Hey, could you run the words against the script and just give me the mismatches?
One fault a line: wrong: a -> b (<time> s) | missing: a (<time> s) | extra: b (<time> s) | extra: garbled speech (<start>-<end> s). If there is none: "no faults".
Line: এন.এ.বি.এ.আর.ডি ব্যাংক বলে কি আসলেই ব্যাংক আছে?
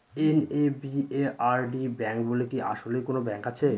extra: কোনো (3.0 s)